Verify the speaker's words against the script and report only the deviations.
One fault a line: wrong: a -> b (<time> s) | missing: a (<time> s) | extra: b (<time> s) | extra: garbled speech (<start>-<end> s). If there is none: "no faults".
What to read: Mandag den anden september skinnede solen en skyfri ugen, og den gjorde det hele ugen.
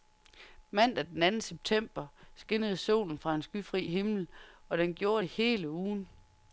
extra: fra (3.2 s)
wrong: ugen -> himmel (3.9 s)